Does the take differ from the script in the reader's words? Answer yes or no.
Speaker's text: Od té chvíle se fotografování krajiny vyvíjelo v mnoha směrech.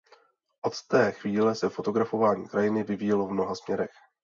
no